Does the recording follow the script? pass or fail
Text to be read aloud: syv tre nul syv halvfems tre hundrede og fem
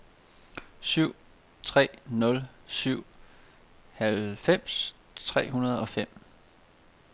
pass